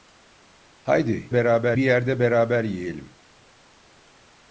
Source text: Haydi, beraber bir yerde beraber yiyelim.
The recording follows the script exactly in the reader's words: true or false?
true